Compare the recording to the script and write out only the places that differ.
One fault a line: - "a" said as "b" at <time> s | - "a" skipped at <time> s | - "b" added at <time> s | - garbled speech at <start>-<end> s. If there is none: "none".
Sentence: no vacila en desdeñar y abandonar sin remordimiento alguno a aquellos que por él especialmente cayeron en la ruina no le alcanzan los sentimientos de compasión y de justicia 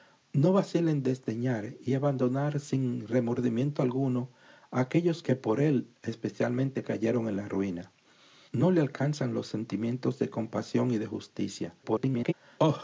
- garbled speech at 11.8-12.3 s